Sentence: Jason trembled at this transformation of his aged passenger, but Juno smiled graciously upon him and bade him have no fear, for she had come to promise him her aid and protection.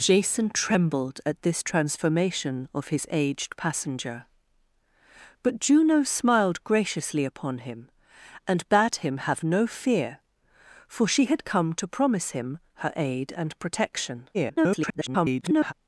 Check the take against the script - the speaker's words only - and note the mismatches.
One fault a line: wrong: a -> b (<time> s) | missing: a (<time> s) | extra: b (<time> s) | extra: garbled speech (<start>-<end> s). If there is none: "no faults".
extra: garbled speech (14.3-15.7 s)